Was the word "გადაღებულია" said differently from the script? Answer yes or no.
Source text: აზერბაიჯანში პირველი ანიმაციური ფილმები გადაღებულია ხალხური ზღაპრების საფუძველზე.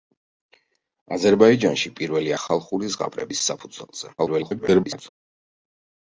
yes